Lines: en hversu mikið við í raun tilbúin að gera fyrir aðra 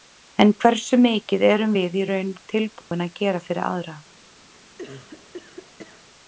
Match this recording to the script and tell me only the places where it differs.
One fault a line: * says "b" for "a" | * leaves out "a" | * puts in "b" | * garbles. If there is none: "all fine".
* puts in "erum"